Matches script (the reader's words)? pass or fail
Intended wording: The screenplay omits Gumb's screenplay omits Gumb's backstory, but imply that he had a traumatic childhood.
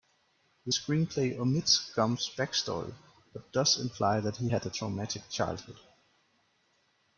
fail